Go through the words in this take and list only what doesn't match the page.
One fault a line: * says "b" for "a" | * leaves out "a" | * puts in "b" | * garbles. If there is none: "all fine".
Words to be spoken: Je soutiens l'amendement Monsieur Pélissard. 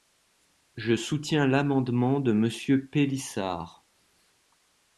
* puts in "de"